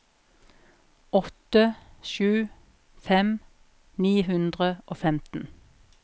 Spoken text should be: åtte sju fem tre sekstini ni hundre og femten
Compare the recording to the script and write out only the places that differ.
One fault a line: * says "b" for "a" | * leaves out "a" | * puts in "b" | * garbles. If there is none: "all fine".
* leaves out "tre sekstini"